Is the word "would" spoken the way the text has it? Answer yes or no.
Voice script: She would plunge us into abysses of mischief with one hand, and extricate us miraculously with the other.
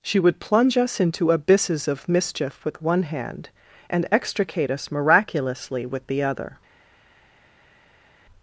yes